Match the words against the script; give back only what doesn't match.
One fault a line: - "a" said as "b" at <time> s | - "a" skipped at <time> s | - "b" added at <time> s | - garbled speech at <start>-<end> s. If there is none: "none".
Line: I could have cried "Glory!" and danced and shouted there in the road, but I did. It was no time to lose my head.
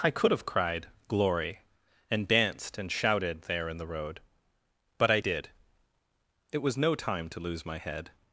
none